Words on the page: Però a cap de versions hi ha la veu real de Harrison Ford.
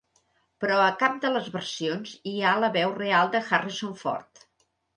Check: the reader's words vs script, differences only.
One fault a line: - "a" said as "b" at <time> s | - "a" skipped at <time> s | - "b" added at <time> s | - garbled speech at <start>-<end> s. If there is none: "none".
- "les" added at 1.4 s